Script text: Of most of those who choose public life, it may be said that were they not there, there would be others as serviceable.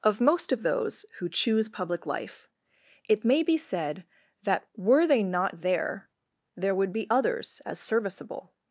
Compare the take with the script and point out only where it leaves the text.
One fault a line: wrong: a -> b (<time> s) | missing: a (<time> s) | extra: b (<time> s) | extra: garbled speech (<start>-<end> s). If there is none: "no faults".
no faults